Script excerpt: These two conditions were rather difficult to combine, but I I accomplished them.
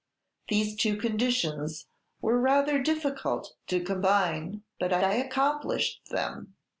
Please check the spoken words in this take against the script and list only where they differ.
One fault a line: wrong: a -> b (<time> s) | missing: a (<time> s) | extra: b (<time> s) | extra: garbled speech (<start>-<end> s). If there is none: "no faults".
no faults